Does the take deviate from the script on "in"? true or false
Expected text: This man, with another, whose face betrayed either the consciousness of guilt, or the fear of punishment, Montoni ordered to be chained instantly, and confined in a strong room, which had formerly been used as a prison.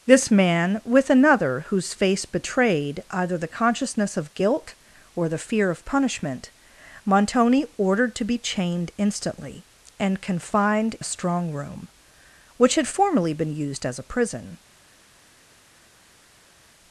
true